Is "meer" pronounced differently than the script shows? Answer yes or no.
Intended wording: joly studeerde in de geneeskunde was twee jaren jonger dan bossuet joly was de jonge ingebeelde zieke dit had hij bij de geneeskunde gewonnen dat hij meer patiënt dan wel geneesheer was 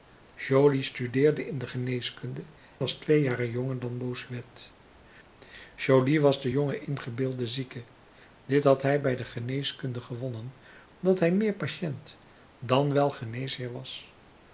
no